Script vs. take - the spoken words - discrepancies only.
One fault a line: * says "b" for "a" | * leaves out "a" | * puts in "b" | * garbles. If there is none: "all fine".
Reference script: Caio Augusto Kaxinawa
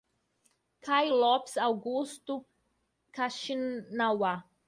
* puts in "Lopes"